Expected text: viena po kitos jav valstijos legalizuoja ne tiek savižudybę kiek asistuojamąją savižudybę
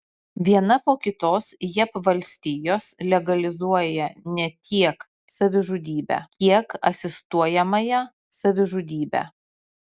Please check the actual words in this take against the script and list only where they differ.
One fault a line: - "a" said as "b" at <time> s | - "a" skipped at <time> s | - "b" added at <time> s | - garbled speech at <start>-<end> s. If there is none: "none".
none